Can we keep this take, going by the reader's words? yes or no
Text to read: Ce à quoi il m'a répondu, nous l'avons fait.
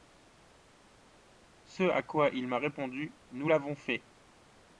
yes